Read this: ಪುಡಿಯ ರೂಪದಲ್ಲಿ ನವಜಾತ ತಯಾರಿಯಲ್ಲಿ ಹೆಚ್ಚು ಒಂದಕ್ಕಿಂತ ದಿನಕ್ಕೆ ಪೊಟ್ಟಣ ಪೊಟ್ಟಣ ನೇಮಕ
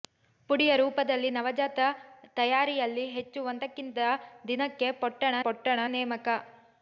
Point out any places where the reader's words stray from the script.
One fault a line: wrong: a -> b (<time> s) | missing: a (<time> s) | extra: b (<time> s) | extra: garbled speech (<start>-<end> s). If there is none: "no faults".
no faults